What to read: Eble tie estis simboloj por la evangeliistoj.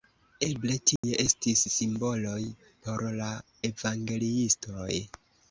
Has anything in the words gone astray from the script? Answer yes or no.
no